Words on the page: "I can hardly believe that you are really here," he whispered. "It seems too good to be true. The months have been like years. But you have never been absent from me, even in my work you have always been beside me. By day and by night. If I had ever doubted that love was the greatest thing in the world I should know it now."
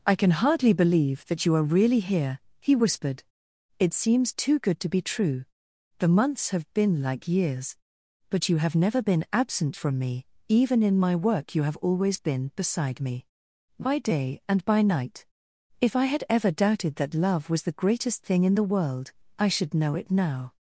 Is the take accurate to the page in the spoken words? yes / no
yes